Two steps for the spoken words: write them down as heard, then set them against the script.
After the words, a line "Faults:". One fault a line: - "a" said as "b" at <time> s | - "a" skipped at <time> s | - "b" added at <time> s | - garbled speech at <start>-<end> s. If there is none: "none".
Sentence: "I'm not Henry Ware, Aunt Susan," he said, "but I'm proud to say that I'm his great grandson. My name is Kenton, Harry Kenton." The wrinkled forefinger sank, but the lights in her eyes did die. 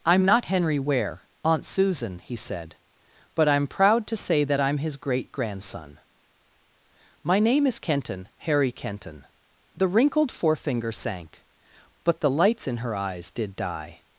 "I'm not Henry Ware, Aunt Susan," he said, "but I'm proud to say that I'm his great grandson. My name is Kenton, Harry Kenton." The wrinkled forefinger sank, but the lights in her eyes did die.
Faults:
none